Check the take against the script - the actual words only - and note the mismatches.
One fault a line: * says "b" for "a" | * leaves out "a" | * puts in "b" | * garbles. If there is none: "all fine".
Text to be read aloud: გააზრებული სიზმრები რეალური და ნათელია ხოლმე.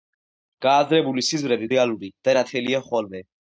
all fine